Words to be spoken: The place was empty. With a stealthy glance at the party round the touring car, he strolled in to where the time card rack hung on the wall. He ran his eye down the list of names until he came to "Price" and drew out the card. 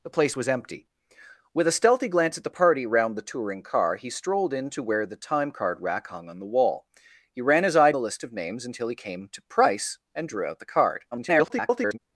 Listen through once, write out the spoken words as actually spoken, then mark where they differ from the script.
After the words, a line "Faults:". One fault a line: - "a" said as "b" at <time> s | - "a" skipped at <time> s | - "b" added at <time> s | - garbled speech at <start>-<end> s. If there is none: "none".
The place was empty. With a stealthy glance at the party round the touring car, he strolled in to where the time card rack hung on the wall. He ran his eye the list of names until he came to "Price" and drew out the card. [garbled]
Faults:
- "down" skipped at 7.9 s
- garbled speech at 11.1-12.0 s